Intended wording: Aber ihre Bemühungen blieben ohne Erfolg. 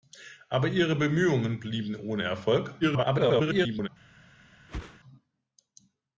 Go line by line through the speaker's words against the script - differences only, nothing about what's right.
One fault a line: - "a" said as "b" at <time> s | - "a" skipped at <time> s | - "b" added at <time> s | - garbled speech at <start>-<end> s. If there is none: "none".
- garbled speech at 2.8-3.9 s